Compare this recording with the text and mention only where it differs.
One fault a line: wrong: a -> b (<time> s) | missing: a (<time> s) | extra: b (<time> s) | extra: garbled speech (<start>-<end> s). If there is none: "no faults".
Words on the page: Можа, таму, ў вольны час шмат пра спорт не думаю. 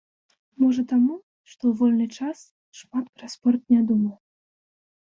extra: што (1.5 s)